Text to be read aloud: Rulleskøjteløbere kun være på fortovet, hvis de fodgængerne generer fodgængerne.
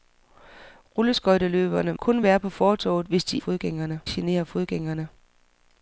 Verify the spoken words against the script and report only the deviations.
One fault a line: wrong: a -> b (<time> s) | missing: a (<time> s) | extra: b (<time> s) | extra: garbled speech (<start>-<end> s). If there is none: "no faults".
no faults